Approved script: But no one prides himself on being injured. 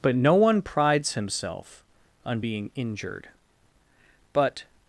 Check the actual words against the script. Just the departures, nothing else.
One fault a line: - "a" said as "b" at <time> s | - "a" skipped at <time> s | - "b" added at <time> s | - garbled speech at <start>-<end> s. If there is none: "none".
- "But" added at 4.3 s